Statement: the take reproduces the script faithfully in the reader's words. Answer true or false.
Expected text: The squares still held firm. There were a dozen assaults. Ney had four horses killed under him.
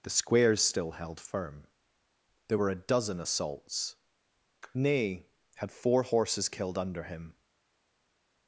true